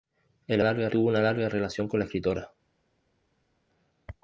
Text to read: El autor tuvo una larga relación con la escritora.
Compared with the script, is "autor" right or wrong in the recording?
wrong